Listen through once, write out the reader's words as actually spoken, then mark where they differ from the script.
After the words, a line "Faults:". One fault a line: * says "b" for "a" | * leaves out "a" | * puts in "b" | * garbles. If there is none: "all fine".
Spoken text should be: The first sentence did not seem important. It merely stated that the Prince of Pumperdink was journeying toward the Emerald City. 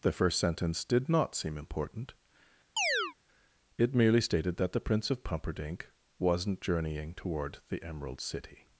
The first sentence did not seem important. It merely stated that the Prince of Pumperdink wasn't journeying toward the Emerald City.
Faults:
* says "wasn't" for "was"